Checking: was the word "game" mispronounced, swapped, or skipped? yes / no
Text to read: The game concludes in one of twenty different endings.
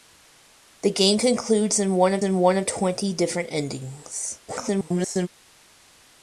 no